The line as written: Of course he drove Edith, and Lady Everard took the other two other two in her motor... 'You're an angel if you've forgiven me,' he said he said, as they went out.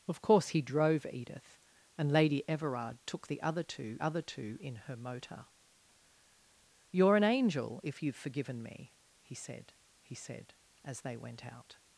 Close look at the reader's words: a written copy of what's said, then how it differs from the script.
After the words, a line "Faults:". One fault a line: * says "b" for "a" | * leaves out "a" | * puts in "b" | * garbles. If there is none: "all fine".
Of course he drove Edith, and Lady Everard took the other two other two in her motor... 'You're an angel if you've forgiven me,' he said he said, as they went out.
Faults:
all fine